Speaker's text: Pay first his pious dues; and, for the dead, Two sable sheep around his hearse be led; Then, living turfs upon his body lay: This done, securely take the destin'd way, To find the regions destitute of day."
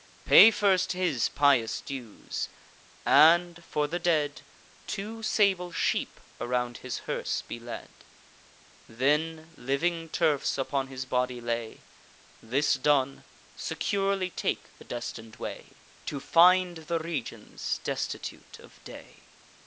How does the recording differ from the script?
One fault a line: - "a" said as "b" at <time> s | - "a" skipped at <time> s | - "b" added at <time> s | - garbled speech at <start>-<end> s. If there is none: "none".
none